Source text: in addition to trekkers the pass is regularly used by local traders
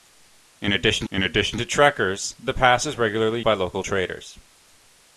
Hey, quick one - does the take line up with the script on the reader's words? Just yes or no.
no